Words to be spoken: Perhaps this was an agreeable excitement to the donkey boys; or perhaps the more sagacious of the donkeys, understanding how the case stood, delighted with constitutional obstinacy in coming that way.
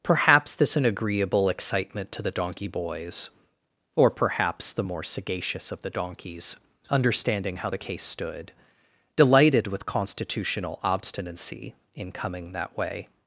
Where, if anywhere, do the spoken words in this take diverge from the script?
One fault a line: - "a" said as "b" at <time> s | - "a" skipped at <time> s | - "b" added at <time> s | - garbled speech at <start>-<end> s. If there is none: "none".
- "was" skipped at 0.8 s